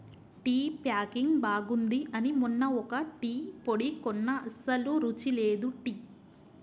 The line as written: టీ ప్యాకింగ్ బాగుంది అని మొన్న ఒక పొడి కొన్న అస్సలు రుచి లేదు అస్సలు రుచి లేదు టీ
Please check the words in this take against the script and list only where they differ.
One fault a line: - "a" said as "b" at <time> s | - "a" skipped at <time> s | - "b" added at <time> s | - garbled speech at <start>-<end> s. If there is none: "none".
- "టీ" added at 3.2 s
- "అస్సలు రుచి లేదు" skipped at 5.7 s